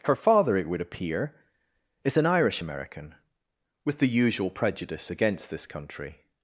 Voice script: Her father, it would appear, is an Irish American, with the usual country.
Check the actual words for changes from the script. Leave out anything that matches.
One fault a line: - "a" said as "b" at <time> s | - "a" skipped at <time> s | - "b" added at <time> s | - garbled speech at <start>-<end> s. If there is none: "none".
- "prejudice against this" added at 4.5 s